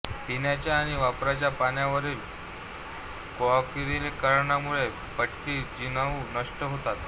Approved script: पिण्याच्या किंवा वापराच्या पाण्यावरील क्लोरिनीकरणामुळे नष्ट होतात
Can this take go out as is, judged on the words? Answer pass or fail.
fail